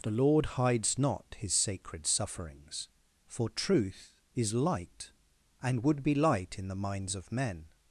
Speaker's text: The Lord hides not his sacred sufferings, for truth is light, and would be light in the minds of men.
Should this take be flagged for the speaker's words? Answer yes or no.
no